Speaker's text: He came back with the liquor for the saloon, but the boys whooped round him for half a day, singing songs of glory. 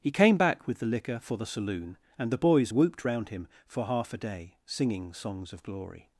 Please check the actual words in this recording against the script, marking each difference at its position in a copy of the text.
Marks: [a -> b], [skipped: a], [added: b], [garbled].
He came back with the liquor for the saloon, [but -> and] the boys whooped round him for half a day, singing songs of glory.